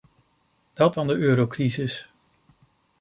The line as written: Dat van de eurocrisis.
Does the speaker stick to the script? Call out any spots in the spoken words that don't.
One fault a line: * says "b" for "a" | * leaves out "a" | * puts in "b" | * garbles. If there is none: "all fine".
all fine